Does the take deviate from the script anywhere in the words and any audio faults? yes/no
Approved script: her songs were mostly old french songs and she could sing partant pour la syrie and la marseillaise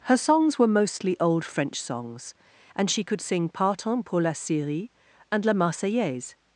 no